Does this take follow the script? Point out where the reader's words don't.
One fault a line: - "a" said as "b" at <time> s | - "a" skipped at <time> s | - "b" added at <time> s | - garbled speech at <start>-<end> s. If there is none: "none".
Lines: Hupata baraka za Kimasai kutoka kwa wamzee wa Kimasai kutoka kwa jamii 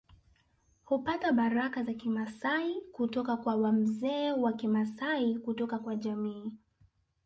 none